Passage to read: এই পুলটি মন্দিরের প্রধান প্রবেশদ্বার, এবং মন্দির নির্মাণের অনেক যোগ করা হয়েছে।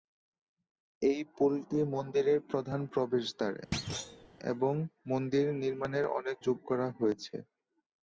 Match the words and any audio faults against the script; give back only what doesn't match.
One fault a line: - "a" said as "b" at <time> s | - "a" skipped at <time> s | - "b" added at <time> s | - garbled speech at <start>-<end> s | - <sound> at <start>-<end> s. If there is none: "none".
- thud at 3.7-4.3 s